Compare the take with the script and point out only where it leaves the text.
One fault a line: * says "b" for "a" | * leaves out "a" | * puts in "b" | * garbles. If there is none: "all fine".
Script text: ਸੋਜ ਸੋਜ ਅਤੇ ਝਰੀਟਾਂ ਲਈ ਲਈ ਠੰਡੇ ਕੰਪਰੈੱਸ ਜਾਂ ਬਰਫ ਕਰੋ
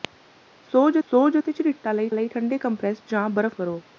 all fine